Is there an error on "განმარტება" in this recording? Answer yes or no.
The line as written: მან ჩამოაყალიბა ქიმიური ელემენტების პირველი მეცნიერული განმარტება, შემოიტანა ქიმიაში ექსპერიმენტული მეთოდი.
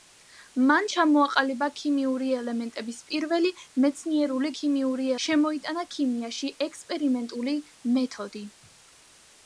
yes